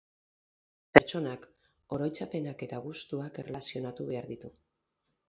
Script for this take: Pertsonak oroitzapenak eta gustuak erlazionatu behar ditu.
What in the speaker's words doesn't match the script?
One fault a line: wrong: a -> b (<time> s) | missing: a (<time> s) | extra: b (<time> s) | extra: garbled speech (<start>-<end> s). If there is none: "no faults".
no faults